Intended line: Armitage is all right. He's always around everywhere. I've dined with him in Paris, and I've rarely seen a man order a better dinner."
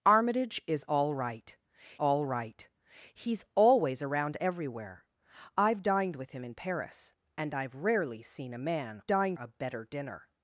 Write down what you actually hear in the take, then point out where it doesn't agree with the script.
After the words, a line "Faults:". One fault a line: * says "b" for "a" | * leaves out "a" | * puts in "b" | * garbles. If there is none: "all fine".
Armitage is all right all right. He's always around everywhere. I've dined with him in Paris, and I've rarely seen a man dined a better dinner."
Faults:
* puts in "all right"
* says "dined" for "order"